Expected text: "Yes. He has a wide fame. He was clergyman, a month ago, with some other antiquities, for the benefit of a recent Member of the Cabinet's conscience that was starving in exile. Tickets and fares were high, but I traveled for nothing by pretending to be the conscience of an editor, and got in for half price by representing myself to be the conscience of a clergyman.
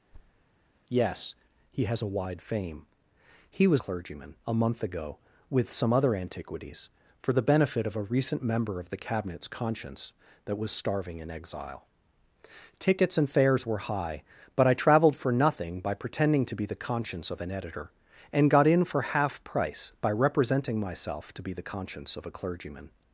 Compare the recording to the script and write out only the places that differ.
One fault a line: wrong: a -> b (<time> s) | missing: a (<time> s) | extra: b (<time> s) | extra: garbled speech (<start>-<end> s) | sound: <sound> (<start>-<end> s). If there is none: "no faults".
sound: thud (0.1-0.4 s)